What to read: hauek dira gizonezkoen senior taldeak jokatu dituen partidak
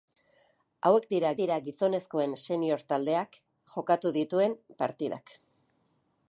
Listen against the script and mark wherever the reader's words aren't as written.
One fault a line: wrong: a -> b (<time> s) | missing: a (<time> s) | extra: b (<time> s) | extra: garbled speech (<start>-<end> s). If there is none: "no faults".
extra: dira (1.4 s)